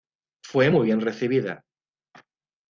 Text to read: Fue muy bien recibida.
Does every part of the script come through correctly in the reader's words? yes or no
yes